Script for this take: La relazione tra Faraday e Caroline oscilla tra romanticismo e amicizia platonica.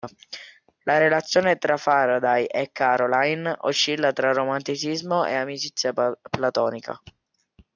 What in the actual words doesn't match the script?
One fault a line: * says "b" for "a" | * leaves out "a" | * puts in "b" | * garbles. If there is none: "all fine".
all fine